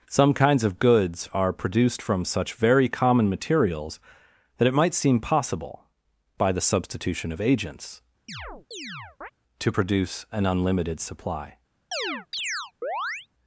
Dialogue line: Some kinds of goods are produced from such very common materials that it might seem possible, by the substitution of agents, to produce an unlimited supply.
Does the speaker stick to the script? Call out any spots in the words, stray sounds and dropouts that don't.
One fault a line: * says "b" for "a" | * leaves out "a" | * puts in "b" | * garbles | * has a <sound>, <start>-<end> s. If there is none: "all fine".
* has a chirp, 8.3-9.3 s
* has a chirp, 11.9-13.3 s